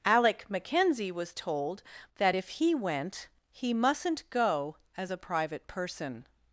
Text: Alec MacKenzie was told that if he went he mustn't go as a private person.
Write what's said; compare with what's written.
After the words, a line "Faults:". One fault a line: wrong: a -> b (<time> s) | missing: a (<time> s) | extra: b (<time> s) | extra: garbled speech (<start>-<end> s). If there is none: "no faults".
Alec MacKenzie was told that if he went he mustn't go as a private person.
Faults:
no faults